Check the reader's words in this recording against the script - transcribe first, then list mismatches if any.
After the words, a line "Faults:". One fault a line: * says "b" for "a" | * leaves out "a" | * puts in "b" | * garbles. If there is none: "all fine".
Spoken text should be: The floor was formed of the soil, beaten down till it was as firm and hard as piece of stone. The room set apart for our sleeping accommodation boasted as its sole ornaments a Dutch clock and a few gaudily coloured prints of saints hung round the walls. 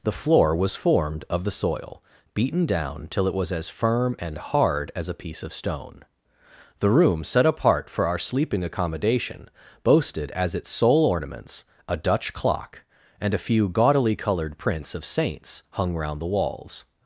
The floor was formed of the soil, beaten down till it was as firm and hard as a piece of stone. The room set apart for our sleeping accommodation boasted as its sole ornaments a Dutch clock and a few gaudily coloured prints of saints hung round the walls.
Faults:
* puts in "a"